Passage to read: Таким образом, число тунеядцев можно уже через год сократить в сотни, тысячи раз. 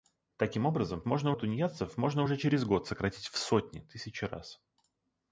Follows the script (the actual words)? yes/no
no